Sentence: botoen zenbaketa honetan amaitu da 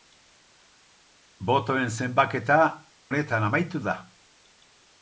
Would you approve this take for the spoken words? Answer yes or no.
yes